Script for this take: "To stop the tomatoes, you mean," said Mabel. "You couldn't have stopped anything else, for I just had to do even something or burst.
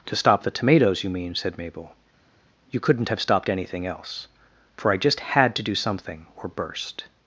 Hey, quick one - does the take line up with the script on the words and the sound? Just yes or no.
no